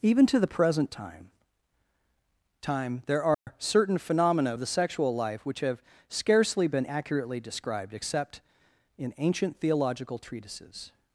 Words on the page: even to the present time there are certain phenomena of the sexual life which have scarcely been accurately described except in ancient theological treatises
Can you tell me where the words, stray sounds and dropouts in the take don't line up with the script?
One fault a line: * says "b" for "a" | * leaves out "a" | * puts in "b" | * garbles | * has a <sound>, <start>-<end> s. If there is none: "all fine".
* puts in "time"
* has a dropout, 3.3-3.5 s